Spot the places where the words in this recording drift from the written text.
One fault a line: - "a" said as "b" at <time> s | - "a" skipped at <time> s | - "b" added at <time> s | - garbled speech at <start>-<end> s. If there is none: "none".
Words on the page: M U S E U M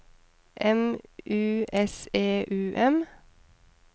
none